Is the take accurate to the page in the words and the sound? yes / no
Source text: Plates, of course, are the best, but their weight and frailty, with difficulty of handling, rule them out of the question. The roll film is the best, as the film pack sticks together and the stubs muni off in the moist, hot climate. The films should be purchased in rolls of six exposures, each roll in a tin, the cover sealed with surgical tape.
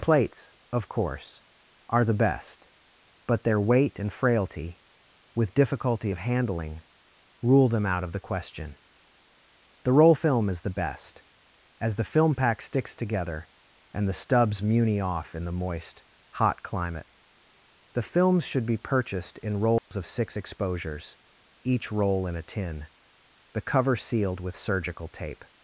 no